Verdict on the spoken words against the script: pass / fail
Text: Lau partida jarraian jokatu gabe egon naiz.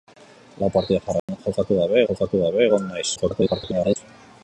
fail